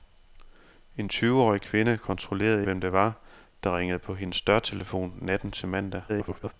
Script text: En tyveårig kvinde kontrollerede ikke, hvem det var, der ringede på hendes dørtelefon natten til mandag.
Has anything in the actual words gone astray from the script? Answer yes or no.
yes